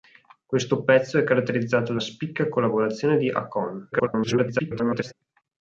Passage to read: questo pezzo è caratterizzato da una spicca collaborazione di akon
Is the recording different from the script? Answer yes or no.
yes